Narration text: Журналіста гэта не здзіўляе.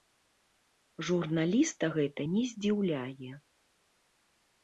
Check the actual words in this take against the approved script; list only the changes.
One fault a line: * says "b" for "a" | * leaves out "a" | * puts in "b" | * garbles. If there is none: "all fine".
all fine